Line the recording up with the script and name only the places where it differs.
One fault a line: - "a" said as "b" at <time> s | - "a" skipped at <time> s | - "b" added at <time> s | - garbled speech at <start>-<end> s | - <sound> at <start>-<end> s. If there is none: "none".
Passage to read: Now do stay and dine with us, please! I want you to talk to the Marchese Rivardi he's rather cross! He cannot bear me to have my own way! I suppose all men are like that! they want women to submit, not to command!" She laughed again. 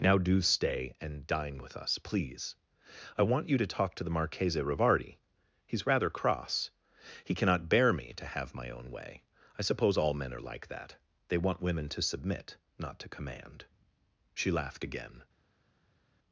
none